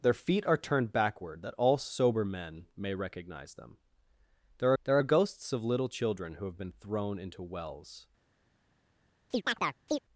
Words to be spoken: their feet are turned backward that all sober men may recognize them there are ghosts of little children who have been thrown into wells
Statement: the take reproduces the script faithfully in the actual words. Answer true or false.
false